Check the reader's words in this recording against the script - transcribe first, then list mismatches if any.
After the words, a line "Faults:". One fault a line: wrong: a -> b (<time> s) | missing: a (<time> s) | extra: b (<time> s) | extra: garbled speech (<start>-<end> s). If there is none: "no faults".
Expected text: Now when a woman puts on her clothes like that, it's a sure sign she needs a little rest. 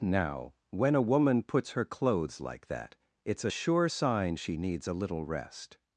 Now when a woman puts her clothes like that, it's a sure sign she needs a little rest.
Faults:
missing: on (1.7 s)